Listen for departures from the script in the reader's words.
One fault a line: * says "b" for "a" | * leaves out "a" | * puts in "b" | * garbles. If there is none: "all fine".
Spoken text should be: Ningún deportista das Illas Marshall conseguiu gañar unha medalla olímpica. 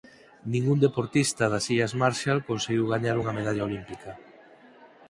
all fine